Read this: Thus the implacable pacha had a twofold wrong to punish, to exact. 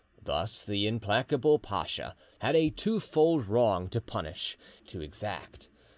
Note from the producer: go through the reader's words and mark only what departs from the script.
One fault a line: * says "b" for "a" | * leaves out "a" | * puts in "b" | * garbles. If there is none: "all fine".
all fine